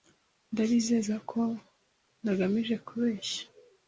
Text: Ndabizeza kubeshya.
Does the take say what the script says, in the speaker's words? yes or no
no